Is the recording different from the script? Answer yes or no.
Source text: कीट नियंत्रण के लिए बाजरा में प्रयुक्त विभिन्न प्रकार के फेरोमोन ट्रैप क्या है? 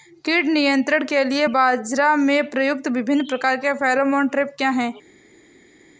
no